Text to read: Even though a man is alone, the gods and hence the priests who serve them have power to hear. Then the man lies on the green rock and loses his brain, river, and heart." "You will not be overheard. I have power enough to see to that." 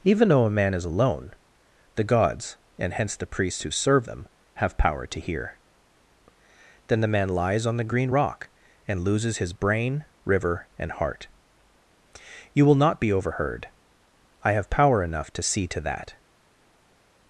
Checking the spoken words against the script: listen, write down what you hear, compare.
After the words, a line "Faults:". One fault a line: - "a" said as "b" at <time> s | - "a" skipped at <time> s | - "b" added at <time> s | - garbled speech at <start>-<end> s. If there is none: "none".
Even though a man is alone, the gods and hence the priests who serve them have power to hear. Then the man lies on the green rock and loses his brain, river, and heart." "You will not be overheard. I have power enough to see to that."
Faults:
none